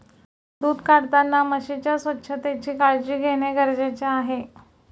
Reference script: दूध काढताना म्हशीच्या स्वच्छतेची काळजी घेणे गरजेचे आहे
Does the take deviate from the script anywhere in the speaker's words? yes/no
no